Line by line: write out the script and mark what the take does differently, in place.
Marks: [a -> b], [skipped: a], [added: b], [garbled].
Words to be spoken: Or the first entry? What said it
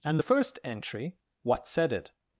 [Or -> And] the first entry? What said it